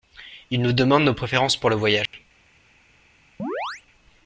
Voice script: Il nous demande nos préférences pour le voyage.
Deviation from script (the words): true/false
false